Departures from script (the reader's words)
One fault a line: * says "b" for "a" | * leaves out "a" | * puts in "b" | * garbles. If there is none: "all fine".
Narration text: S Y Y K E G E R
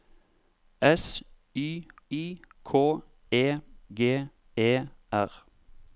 all fine